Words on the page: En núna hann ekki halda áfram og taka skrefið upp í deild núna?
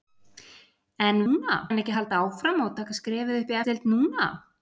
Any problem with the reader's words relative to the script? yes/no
no